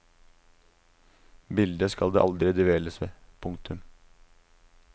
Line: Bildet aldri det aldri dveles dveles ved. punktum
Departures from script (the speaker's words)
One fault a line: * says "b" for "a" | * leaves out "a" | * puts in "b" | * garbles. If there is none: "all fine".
* says "skal" for "aldri"
* leaves out "dveles"